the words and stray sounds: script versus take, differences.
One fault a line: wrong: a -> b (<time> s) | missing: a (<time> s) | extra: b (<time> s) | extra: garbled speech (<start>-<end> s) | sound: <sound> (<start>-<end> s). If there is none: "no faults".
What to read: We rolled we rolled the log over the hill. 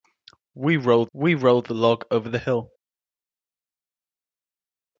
no faults